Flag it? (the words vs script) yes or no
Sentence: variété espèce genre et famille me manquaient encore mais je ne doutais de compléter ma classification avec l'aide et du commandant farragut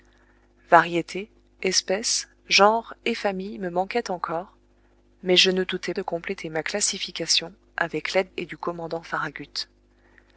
no